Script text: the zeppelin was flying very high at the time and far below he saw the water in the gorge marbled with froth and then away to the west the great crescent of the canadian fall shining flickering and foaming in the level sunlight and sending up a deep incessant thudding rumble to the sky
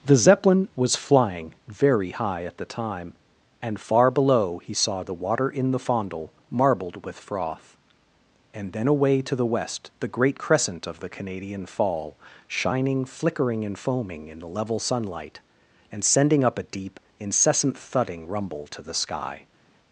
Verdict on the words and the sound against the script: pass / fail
fail